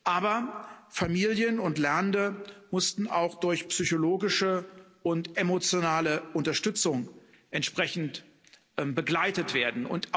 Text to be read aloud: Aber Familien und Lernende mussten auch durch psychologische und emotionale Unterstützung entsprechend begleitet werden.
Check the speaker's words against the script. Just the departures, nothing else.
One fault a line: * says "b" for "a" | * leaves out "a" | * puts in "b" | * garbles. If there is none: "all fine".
all fine